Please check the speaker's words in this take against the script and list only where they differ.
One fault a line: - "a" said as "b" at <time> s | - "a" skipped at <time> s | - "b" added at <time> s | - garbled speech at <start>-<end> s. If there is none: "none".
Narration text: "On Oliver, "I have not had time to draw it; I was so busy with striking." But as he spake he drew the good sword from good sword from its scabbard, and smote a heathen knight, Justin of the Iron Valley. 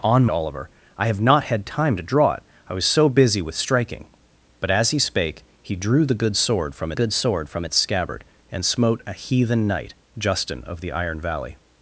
none